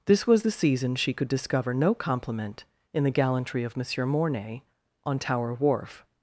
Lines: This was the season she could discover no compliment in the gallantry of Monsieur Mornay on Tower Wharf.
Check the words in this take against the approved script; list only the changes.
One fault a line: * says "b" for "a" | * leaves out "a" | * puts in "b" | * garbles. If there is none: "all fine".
all fine